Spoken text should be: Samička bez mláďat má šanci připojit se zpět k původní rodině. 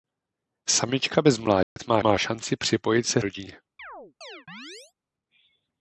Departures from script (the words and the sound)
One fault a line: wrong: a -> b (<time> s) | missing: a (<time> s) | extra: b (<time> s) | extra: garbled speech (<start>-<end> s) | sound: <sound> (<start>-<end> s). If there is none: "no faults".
sound: dropout (1.6-1.8 s)
extra: má (2.0 s)
missing: zpět k původní (3.2 s)
sound: chirp (3.8-4.9 s)